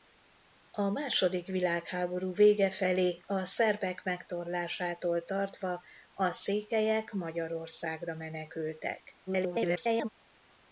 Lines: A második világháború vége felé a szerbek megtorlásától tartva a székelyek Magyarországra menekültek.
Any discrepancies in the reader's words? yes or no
yes